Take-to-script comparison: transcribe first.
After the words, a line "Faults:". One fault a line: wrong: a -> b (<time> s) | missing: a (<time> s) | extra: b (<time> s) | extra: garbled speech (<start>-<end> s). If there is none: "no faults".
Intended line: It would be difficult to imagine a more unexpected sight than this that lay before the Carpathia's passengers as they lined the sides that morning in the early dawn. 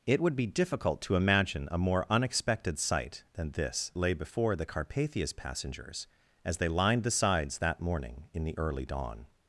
It would be difficult to imagine a more unexpected sight than this lay before the Carpathia's passengers as they lined the sides that morning in the early dawn.
Faults:
missing: that (3.9 s)